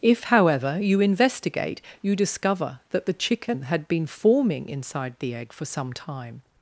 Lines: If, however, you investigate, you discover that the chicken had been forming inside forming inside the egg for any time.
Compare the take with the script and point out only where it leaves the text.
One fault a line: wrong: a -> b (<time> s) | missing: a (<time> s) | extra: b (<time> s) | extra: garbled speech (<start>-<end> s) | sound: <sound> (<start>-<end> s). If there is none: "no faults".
missing: forming inside (5.1 s)
wrong: any -> some (5.6 s)